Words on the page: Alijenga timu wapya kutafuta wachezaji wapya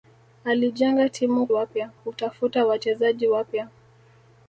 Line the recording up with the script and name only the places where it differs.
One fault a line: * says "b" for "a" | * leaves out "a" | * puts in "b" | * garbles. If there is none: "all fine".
all fine